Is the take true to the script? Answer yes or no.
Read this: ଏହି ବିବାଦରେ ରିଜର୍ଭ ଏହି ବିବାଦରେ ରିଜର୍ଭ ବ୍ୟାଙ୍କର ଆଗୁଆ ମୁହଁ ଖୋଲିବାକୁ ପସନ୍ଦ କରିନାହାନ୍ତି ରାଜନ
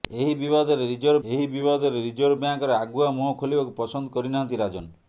yes